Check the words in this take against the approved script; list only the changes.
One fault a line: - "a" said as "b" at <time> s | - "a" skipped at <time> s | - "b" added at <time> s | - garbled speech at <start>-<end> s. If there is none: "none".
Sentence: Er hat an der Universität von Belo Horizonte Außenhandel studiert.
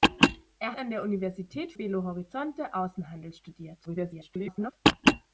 - "hat" skipped at 0.8 s
- "von" skipped at 1.7 s
- garbled speech at 3.9-4.7 s